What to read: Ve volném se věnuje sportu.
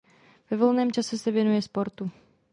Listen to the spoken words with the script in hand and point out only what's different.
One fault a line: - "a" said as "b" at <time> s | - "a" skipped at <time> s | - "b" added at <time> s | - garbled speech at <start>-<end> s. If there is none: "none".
- "čase" added at 0.9 s